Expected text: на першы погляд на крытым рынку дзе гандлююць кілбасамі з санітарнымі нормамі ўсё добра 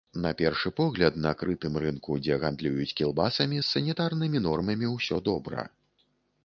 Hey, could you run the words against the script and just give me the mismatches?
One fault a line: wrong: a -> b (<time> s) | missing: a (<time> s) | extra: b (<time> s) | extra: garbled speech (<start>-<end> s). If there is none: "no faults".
no faults